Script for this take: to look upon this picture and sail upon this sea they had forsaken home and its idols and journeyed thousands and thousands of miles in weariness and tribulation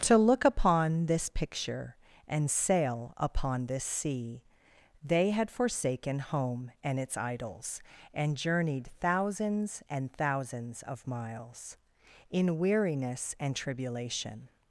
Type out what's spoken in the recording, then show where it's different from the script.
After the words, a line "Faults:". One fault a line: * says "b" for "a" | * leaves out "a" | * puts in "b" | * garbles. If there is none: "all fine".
to look upon this picture and sail upon this sea they had forsaken home and its idols and journeyed thousands and thousands of miles in weariness and tribulation
Faults:
all fine